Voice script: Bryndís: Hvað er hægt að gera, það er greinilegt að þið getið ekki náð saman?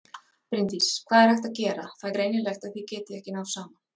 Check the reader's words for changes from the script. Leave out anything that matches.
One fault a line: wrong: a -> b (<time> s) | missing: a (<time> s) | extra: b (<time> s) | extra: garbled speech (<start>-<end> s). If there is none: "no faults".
no faults